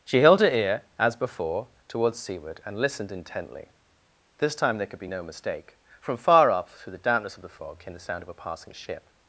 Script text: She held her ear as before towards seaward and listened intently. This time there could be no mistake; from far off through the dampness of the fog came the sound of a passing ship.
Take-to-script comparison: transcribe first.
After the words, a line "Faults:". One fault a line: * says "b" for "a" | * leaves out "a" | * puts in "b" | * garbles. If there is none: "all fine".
She held her ear as before towards seaward and listened intently. This time there could be no mistake; from far off through the dampness of the fog came the sound of a passing ship.
Faults:
all fine